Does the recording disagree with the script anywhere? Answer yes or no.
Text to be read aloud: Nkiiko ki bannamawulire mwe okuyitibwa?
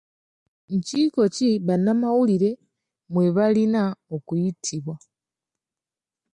yes